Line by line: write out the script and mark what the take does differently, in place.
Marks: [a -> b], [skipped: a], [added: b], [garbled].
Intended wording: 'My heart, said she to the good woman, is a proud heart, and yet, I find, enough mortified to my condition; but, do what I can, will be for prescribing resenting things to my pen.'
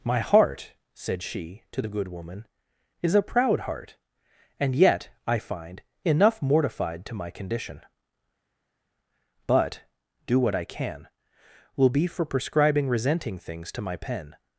'My heart, said she to the good woman, is a proud heart, and yet, I find, enough mortified to my condition; but, do what I can, will be for prescribing resenting things to my pen.'